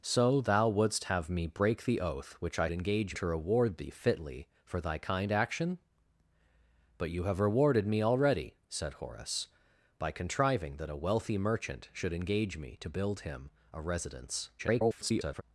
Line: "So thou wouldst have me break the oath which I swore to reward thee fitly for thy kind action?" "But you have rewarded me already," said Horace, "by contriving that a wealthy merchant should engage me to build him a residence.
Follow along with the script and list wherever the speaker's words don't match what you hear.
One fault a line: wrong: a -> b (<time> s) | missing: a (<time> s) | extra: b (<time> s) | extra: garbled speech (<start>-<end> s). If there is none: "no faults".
wrong: swore -> engage (2.7 s)
extra: garbled speech (14.6-15.4 s)